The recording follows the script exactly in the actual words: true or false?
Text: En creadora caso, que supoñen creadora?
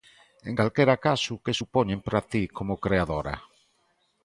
false